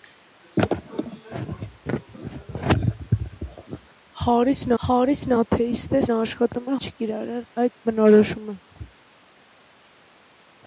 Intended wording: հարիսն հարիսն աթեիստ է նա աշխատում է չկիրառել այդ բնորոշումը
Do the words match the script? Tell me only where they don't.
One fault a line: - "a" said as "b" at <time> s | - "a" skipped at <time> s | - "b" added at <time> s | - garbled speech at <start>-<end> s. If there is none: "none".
none